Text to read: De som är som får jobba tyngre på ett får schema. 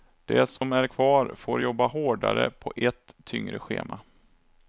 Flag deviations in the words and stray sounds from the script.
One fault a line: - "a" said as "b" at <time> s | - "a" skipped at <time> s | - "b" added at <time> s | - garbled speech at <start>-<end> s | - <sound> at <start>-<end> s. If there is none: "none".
- dropout at 0.6-0.6 s
- "som" said as "kvar" at 0.8 s
- "tyngre" said as "hårdare" at 1.9 s
- "får" said as "tyngre" at 3.2 s